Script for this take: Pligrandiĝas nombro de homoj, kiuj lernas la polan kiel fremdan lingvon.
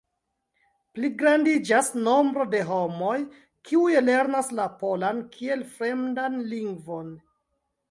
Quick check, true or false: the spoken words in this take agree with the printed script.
true